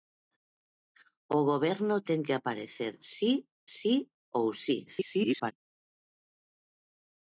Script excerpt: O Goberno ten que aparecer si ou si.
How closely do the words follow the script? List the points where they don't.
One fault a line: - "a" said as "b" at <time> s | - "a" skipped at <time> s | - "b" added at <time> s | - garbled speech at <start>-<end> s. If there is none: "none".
- "si" added at 3.8 s
- garbled speech at 4.9-5.5 s